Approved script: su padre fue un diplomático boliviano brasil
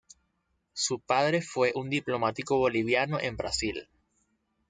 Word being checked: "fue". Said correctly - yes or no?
yes